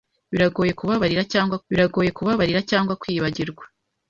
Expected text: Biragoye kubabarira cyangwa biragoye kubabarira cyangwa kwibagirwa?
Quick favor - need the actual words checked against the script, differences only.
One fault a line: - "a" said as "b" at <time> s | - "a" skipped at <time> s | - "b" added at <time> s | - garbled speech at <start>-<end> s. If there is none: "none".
none